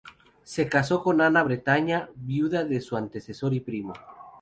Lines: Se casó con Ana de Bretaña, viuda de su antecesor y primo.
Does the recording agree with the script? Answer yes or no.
yes